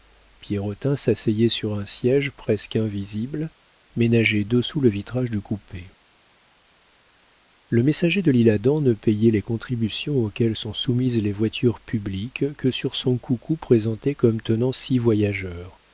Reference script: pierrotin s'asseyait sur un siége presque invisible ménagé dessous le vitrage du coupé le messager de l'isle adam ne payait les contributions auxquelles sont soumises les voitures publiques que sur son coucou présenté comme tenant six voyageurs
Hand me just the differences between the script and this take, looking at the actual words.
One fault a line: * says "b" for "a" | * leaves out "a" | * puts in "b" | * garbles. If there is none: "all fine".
all fine